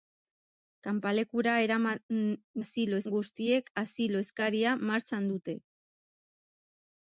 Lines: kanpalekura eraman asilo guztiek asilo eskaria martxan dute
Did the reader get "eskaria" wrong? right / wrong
right